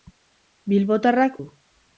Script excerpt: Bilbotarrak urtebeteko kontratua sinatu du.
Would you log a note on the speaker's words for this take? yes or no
yes